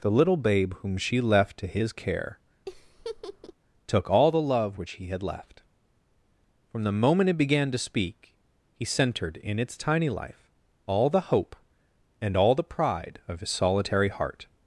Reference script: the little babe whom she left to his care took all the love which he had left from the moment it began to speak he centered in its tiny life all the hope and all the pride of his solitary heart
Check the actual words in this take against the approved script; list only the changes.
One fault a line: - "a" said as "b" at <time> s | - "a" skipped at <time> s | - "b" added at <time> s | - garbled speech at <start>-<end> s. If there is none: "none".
none